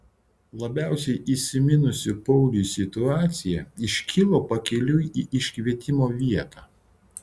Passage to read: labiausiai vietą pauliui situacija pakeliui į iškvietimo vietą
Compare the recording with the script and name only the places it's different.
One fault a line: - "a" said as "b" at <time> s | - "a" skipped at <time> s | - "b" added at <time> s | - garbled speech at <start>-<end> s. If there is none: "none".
- "vietą" said as "įsiminusi" at 1.3 s
- "iškilo" added at 3.9 s